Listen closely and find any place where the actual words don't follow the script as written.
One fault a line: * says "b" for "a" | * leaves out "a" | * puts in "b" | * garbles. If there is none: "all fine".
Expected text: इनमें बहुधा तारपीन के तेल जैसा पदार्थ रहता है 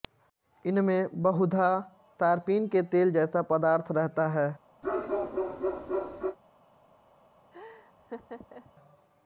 all fine